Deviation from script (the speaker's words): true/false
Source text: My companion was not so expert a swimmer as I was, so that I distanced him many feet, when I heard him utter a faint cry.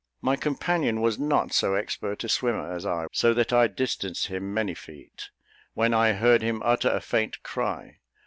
true